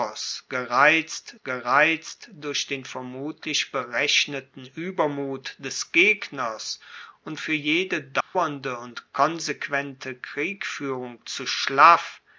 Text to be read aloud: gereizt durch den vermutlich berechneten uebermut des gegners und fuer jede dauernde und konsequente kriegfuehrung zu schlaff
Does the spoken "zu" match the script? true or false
true